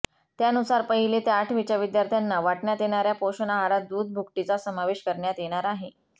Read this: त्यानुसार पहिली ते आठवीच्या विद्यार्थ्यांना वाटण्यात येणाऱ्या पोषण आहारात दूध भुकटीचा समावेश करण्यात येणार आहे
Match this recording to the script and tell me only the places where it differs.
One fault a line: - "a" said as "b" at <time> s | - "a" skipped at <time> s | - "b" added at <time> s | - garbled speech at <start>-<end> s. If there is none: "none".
none